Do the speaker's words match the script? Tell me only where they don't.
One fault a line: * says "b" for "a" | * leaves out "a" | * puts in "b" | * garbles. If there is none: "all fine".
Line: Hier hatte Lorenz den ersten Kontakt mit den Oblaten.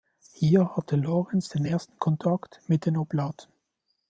all fine